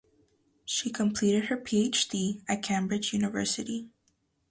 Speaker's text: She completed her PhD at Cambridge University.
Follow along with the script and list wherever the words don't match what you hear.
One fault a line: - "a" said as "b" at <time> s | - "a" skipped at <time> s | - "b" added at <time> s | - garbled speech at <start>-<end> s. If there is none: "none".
none